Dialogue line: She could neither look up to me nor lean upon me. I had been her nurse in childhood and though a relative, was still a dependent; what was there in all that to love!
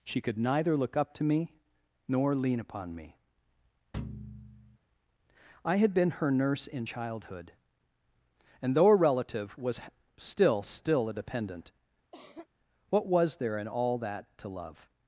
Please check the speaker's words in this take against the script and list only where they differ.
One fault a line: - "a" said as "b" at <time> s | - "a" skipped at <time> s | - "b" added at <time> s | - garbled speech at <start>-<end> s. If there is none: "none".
- "still" added at 10.6 s